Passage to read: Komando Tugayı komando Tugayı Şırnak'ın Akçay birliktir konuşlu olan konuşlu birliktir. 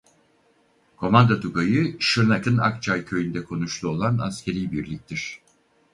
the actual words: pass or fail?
fail